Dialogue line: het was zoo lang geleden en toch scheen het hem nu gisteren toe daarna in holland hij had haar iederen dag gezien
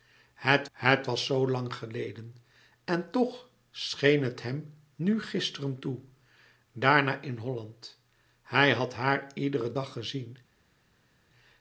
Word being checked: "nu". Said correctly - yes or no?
yes